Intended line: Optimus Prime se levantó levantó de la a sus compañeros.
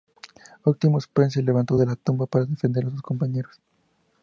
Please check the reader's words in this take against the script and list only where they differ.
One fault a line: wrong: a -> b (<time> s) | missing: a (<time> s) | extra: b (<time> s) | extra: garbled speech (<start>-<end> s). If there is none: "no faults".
missing: levantó (1.8 s)
extra: tumba para defender (1.9 s)